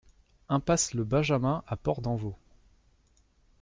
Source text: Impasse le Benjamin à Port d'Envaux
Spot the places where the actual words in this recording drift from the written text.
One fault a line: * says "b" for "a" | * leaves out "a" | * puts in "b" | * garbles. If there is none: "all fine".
all fine